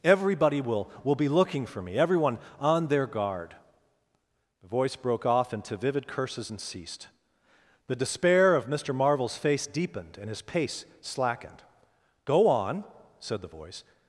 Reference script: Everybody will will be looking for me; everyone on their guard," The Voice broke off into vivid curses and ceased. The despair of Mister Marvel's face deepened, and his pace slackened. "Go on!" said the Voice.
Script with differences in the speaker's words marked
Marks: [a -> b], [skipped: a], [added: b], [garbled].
Everybody will will be looking for me; everyone on their guard," The Voice broke off into vivid curses and ceased. The despair of Mister Marvel's face deepened, and his pace slackened. "Go on!" said the Voice.